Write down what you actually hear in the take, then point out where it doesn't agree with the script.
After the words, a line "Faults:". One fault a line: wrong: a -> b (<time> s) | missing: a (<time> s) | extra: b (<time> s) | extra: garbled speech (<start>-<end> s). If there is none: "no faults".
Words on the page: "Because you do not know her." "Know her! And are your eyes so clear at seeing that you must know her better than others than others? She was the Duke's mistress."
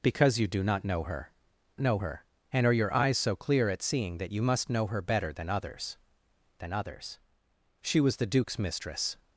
"Because you do not know her." "Know her! And are your eyes so clear at seeing that you must know her better than others than others? She was the Duke's mistress."
Faults:
no faults